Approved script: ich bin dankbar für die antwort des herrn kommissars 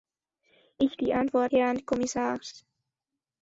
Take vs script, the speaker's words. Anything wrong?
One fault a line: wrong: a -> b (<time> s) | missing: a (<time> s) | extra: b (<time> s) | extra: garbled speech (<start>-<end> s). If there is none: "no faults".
missing: bin dankbar für (1.0 s)
missing: des (1.5 s)